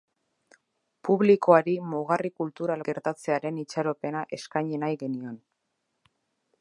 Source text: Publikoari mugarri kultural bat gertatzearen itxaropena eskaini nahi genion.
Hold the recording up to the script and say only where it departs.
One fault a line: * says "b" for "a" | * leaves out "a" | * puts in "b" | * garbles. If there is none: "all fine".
* leaves out "bat"